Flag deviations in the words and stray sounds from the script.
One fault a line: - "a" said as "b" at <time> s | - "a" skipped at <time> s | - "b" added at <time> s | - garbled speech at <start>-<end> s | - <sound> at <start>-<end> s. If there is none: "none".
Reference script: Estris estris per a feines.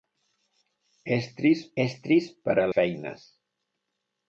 none